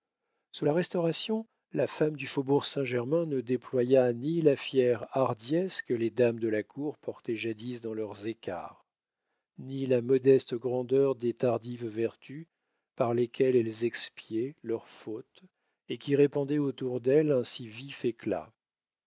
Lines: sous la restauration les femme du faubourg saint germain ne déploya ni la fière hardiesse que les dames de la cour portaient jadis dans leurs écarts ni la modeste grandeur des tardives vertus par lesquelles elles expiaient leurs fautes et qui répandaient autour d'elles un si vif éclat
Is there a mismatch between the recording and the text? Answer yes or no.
yes